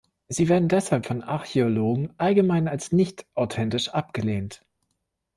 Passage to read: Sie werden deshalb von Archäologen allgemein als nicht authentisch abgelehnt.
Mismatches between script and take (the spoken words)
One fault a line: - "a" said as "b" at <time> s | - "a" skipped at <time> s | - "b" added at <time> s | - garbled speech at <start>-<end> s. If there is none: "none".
none